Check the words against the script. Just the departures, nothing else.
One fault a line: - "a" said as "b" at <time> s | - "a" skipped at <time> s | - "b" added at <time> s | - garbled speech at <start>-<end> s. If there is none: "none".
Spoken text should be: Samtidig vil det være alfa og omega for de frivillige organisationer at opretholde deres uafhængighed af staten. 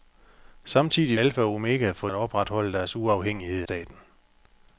- "vil det være" skipped at 1.2 s
- "de frivillige organisationer" skipped at 2.1 s
- "af" skipped at 3.6 s